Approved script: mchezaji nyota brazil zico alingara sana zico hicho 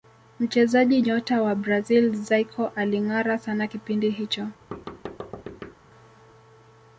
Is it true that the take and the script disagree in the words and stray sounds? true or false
true